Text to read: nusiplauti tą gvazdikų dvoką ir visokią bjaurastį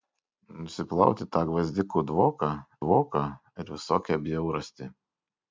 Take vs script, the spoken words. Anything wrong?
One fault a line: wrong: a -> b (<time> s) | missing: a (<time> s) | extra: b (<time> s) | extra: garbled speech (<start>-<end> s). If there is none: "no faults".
extra: dvoką (2.8 s)